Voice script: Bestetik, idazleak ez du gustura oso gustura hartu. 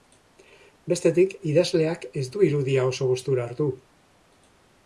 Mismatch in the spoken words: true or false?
true